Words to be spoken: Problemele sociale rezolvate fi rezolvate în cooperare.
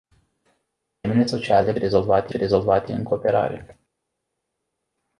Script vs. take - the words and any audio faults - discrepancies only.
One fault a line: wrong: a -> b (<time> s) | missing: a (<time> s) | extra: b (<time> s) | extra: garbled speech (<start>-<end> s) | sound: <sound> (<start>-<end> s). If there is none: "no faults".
no faults